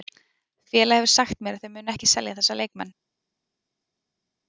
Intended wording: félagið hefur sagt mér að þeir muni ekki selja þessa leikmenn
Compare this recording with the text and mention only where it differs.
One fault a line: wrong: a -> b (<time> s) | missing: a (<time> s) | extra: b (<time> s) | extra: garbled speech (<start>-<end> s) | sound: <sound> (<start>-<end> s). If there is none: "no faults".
no faults